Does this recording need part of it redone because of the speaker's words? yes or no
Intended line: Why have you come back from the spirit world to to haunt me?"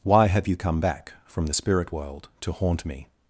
yes